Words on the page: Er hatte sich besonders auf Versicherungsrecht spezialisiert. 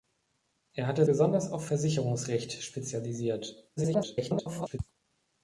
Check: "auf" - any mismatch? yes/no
no